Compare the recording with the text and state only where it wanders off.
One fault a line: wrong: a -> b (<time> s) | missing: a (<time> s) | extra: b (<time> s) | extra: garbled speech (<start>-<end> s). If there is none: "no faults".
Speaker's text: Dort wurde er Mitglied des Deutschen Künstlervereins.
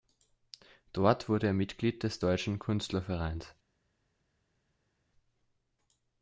no faults